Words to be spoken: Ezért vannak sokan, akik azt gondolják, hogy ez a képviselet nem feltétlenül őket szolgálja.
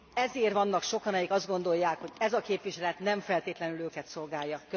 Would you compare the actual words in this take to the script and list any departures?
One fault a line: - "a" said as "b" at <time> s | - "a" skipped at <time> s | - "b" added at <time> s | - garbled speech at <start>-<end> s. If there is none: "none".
none